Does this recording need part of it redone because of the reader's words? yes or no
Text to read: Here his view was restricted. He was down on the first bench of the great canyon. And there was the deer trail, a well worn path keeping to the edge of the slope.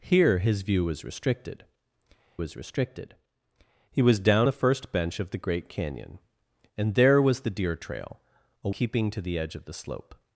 yes